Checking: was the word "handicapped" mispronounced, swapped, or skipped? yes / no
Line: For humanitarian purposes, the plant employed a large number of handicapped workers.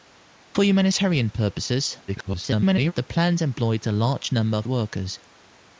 yes